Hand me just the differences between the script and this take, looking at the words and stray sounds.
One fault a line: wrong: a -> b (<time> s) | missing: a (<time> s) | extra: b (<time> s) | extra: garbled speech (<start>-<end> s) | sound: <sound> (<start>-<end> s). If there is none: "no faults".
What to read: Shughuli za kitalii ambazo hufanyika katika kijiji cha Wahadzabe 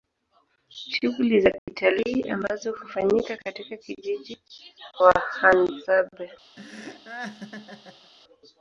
sound: dropout (1.6-1.7 s)
missing: cha (4.4 s)
sound: laugh (6.6-8.1 s)